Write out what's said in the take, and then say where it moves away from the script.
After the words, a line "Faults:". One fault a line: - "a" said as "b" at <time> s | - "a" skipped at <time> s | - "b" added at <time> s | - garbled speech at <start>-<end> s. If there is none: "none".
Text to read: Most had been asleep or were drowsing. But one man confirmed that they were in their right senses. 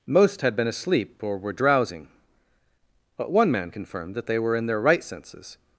Most had been asleep or were drowsing. But one man confirmed that they were in their right senses.
Faults:
none